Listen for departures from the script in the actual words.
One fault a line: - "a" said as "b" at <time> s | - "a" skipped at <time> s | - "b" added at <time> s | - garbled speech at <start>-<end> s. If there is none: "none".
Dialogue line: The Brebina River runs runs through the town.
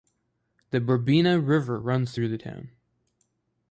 - "runs" skipped at 2.1 s